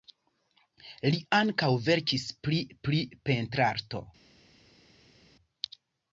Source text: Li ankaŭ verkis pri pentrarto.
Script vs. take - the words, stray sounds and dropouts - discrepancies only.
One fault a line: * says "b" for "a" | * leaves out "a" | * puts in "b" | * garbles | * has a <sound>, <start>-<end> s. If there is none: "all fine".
* puts in "pri"